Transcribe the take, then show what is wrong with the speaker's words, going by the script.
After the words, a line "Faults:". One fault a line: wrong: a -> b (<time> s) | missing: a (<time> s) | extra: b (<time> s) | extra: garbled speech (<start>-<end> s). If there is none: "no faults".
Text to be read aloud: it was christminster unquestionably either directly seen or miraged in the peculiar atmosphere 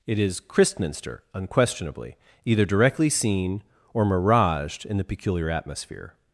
it is christminster unquestionably either directly seen or miraged in the peculiar atmosphere
Faults:
wrong: was -> is (0.2 s)